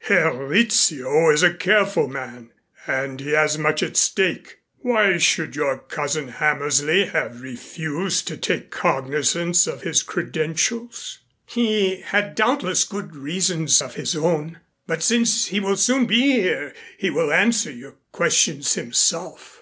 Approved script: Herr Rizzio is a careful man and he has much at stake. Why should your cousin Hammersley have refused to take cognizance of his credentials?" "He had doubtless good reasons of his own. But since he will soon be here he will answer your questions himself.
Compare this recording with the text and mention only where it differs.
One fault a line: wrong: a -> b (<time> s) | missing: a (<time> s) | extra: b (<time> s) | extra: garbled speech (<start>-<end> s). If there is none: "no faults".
no faults